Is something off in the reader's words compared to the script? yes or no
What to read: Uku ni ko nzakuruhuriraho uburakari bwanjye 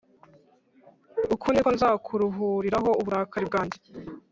no